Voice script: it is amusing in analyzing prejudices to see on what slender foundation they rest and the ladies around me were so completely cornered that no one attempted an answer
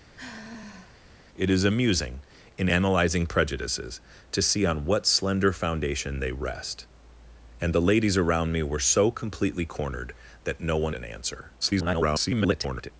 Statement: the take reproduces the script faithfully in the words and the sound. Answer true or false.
false